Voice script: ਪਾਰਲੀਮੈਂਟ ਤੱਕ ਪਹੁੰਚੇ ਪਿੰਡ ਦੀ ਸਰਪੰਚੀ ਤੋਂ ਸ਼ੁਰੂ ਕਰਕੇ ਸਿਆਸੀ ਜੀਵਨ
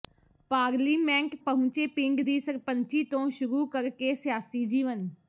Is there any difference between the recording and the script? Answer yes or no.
yes